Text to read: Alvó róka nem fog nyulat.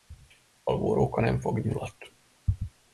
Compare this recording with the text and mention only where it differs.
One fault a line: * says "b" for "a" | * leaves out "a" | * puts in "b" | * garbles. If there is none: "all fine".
all fine